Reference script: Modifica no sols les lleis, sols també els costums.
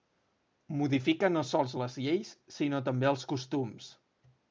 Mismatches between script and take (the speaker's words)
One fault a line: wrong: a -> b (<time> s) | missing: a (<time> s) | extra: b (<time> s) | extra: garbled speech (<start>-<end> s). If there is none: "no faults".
wrong: sols -> sinó (2.6 s)